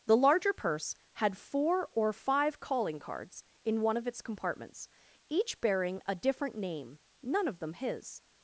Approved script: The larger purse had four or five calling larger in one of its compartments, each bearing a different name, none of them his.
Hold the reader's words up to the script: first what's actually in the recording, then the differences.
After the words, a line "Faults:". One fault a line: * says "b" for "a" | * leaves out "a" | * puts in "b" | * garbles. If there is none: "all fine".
The larger purse had four or five calling cards in one of its compartments, each bearing a different name, none of them his.
Faults:
* says "cards" for "larger"